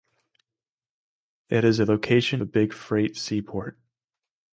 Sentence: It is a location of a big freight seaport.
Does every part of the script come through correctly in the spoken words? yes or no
no